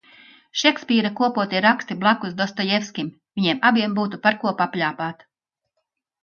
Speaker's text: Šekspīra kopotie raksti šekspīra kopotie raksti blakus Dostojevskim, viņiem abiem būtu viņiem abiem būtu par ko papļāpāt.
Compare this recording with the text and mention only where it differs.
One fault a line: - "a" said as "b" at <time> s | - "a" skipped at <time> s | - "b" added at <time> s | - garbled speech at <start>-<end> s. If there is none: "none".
- "šekspīra kopotie raksti" skipped at 2.0 s
- "viņiem abiem būtu" skipped at 4.2 s